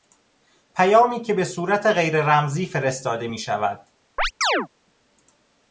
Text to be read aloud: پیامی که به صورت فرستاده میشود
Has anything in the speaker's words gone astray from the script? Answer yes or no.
yes